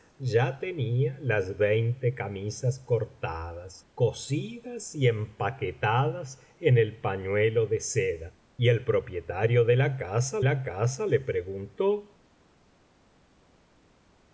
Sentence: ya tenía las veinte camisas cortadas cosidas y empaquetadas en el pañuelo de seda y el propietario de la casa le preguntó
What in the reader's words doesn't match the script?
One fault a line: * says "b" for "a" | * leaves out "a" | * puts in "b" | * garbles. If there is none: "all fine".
* puts in "la casa"